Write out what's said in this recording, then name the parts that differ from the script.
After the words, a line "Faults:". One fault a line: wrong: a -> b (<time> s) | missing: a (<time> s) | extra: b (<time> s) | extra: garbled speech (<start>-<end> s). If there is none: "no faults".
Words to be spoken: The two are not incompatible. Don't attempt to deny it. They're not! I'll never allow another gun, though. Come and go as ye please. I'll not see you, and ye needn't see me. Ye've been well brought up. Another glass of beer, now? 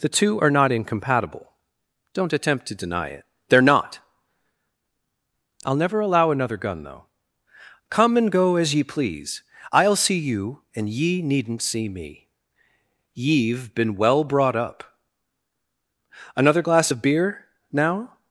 The two are not incompatible. Don't attempt to deny it. They're not! I'll never allow another gun, though. Come and go as ye please. I'll see you, and ye needn't see me. Ye've been well brought up. Another glass of beer, now?
Faults:
missing: not (10.0 s)